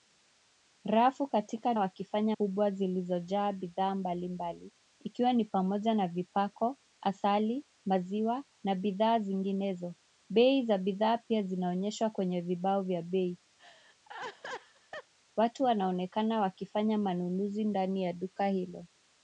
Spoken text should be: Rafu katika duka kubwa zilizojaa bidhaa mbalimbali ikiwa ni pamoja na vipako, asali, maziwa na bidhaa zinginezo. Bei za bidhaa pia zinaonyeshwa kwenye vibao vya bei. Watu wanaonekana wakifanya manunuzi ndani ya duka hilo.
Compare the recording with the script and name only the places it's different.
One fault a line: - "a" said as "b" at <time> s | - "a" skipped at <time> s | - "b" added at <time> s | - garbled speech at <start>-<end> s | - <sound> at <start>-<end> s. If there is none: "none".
- "duka" said as "wakifanya" at 1.8 s
- laugh at 13.6-15.1 s